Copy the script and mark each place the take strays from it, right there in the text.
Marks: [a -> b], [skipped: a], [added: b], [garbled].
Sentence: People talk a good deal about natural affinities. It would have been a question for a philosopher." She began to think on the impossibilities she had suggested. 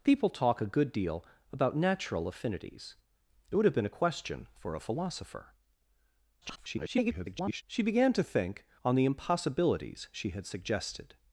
People talk a good deal about natural affinities. It would have been a question for a philosopher." [garbled] She began to think on the impossibilities she had suggested.